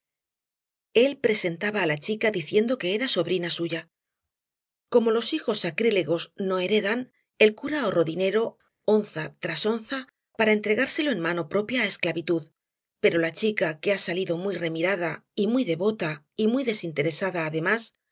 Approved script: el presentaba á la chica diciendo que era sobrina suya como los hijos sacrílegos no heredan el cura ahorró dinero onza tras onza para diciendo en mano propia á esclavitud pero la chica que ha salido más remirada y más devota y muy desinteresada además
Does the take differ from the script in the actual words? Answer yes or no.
yes